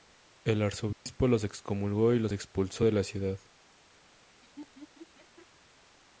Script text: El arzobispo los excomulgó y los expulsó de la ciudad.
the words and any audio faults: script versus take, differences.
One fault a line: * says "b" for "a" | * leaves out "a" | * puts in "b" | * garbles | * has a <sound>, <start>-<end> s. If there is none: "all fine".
* has a dropout, 0.9-1.1 s
* has a laugh, 4.4-5.5 s